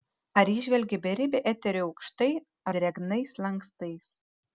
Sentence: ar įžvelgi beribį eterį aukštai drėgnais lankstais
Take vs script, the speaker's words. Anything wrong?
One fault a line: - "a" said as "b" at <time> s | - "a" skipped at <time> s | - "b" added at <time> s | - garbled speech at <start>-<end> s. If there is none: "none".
none